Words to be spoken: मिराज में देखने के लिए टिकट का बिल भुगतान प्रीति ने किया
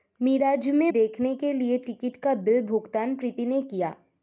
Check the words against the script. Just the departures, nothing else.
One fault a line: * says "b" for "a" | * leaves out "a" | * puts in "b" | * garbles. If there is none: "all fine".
all fine